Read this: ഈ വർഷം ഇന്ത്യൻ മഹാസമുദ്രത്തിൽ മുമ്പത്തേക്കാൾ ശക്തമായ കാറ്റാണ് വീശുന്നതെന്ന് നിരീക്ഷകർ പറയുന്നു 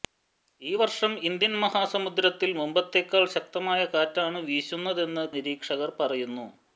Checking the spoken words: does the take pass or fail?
pass